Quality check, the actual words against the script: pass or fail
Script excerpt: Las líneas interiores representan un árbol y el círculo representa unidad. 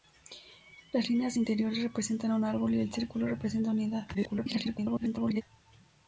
fail